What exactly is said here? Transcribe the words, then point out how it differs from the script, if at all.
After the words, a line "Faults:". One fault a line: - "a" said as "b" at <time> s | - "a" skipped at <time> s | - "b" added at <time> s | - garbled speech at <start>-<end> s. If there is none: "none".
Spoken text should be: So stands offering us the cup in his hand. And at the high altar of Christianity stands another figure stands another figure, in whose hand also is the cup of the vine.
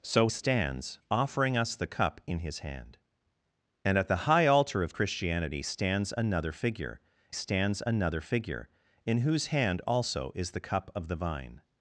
So stands offering us the cup in his hand. And at the high altar of Christianity stands another figure stands another figure, in whose hand also is the cup of the vine.
Faults:
none